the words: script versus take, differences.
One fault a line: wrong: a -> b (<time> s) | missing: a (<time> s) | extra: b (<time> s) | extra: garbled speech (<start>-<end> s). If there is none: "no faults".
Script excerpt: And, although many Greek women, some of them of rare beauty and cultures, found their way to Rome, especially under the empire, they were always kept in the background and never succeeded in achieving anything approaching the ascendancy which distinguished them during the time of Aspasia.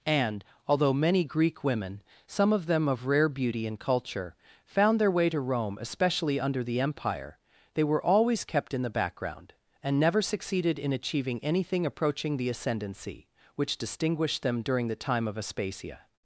wrong: cultures -> culture (3.8 s)